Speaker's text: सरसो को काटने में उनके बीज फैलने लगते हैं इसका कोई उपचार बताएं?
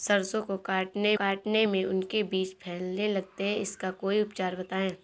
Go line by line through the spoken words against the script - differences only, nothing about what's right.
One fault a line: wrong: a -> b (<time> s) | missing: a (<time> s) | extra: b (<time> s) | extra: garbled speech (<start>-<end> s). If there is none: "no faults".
extra: काटने (1.2 s)